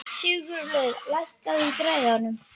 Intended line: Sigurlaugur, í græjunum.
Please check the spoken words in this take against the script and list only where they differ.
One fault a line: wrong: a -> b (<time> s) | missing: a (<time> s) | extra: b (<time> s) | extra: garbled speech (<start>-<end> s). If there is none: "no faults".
extra: lækkaðu (1.1 s)